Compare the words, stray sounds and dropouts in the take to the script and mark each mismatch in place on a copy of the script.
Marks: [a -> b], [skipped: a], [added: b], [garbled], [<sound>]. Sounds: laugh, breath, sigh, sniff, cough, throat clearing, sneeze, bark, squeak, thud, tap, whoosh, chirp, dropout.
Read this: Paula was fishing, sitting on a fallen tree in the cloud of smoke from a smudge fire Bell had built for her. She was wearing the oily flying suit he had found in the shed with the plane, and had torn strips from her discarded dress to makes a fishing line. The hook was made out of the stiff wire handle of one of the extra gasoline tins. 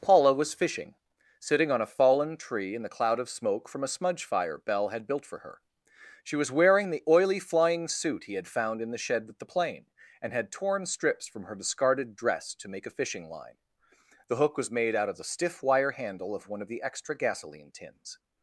Paula was fishing, sitting on a fallen tree in the cloud of smoke from a smudge fire Bell had built for her. She was wearing the oily flying suit he had found in the shed with the plane, and had torn strips from her discarded dress to [makes -> make] a fishing line. The hook was made out of the stiff wire handle of one of the extra gasoline tins.